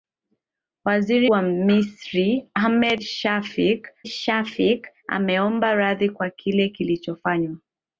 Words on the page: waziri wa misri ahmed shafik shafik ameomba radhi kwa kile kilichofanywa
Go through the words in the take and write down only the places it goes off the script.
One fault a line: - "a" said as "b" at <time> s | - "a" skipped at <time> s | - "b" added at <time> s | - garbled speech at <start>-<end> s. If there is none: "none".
none